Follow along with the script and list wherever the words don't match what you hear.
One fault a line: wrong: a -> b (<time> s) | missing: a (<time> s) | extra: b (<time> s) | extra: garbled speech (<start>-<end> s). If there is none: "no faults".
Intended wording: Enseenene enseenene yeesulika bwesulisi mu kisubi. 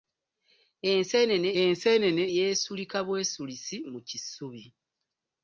no faults